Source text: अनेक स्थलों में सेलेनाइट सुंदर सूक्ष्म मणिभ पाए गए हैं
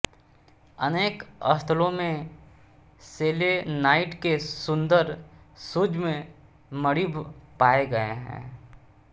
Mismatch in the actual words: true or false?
true